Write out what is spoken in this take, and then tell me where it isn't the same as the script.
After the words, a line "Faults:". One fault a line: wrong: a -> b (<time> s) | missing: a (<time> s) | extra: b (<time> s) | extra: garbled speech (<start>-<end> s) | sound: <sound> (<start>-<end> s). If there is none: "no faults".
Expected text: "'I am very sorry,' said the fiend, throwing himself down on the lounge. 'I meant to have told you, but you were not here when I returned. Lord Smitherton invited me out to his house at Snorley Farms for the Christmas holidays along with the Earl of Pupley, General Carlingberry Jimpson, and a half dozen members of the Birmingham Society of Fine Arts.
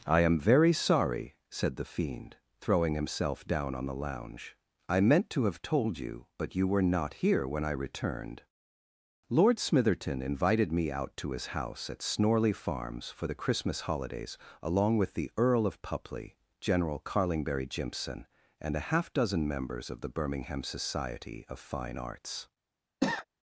"'I am very sorry,' said the fiend, throwing himself down on the lounge. 'I meant to have told you, but you were not here when I returned. Lord Smitherton invited me out to his house at Snorley Farms for the Christmas holidays along with the Earl of Pupley, General Carlingberry Jimpson, and a half dozen members of the Birmingham Society of Fine Arts.
Faults:
sound: cough (23.0-23.3 s)